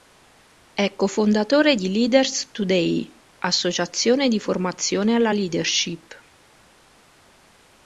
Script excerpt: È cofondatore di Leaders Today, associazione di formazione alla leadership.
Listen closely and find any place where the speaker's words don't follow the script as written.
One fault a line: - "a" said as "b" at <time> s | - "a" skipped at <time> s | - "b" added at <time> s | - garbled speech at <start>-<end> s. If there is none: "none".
none